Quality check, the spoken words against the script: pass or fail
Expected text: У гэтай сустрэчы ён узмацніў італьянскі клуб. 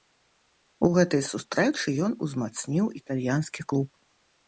pass